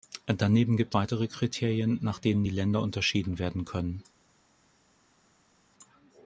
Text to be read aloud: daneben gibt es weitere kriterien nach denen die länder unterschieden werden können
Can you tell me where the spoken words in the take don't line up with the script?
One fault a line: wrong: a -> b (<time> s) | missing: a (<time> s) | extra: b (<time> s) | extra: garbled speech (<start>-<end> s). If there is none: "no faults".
missing: es (0.9 s)